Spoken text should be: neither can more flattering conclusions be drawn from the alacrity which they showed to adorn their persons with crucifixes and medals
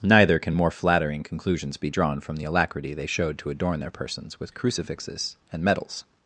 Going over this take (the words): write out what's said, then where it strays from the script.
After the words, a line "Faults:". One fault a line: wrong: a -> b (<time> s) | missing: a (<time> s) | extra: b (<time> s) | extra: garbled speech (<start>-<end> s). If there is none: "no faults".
neither can more flattering conclusions be drawn from the alacrity they showed to adorn their persons with crucifixes and medals
Faults:
missing: which (2.9 s)